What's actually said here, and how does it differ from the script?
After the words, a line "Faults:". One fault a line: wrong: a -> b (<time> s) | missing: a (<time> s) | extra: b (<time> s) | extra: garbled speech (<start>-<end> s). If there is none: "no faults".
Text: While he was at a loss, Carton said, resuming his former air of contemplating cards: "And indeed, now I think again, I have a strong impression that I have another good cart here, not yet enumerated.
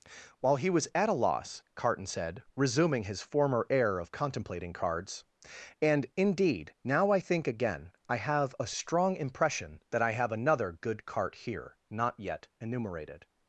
While he was at a loss, Carton said, resuming his former air of contemplating cards: "And indeed, now I think again, I have a strong impression that I have another good cart here, not yet enumerated.
Faults:
no faults